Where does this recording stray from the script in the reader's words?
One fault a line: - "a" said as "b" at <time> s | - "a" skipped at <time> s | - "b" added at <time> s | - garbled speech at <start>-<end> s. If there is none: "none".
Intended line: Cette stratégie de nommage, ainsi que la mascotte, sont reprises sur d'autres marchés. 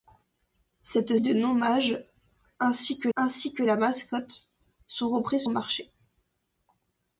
- "stratégie" skipped at 1.1 s
- "ainsi que" added at 3.1 s
- "sur d'autres" skipped at 5.4 s